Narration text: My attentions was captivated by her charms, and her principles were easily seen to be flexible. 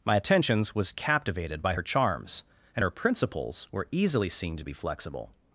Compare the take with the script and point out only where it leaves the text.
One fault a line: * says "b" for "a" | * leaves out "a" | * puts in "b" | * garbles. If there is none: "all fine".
all fine